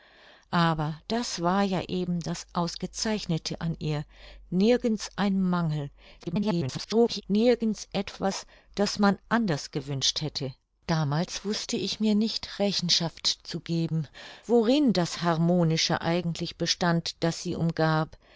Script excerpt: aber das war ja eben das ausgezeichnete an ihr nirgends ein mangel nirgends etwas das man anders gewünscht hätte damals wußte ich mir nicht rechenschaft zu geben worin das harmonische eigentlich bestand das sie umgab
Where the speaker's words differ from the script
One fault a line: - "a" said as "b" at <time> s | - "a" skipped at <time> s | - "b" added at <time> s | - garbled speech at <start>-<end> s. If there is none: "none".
- garbled speech at 6.2-7.2 s